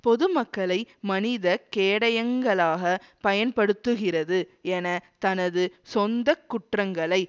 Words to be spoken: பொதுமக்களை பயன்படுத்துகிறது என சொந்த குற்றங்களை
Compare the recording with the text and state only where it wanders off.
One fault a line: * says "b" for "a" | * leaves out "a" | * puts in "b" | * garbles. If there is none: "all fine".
* puts in "மனித கேடயங்களாக"
* puts in "தனது"